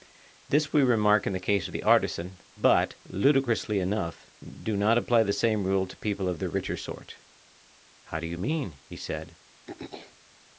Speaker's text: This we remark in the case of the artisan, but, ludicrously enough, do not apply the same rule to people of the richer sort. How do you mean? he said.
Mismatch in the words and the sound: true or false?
true